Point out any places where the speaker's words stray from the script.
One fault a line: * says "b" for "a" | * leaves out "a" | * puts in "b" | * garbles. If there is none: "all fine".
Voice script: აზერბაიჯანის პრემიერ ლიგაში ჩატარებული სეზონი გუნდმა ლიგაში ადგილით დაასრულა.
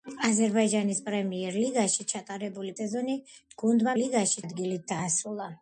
all fine